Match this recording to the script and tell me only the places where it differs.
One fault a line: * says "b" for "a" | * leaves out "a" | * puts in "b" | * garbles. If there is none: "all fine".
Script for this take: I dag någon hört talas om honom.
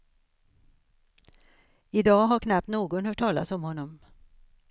* puts in "har knappt"